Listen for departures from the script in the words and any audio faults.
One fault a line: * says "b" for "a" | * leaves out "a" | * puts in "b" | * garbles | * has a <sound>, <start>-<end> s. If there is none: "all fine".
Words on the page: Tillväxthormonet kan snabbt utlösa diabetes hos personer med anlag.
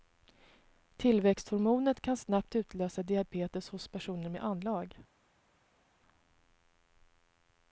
all fine